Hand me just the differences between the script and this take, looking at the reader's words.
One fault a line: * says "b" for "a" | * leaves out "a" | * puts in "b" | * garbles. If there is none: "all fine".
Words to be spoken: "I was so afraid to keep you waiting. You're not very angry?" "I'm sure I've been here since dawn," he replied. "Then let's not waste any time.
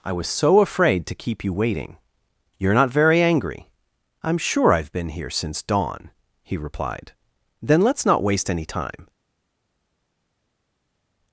all fine